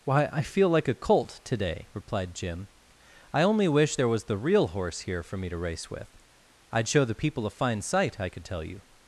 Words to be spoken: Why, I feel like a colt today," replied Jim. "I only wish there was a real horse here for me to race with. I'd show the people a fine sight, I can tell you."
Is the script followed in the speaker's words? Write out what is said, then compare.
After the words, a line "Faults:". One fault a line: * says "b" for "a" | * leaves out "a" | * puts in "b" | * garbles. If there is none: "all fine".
Why, I feel like a colt today," replied Jim. "I only wish there was the real horse here for me to race with. I'd show the people a fine sight, I could tell you."
Faults:
* says "the" for "a"
* says "could" for "can"